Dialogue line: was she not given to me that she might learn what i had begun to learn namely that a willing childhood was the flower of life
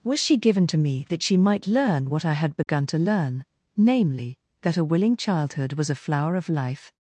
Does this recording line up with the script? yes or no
no